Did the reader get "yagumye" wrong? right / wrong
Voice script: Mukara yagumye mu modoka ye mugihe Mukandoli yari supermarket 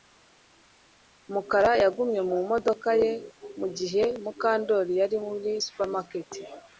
right